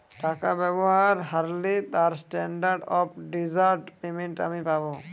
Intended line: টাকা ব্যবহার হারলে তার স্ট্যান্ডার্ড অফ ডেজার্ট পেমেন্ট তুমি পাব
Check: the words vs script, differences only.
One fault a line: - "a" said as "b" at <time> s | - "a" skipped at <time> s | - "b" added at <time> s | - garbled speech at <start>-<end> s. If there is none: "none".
- "তুমি" said as "আমি" at 4.5 s